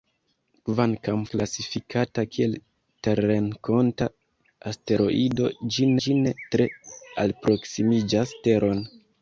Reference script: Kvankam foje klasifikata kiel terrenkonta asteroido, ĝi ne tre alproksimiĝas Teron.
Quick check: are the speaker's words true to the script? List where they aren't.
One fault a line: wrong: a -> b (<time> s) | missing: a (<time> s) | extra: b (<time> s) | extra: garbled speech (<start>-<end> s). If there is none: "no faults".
missing: foje (1.2 s)
extra: ĝi (6.0 s)